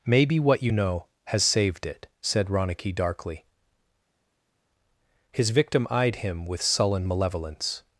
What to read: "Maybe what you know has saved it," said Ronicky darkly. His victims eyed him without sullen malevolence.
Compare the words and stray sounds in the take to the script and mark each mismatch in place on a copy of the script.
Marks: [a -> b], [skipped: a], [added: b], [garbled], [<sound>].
"Maybe what you know has saved it," said Ronicky darkly. His [victims -> victim] eyed him [without -> with] sullen malevolence.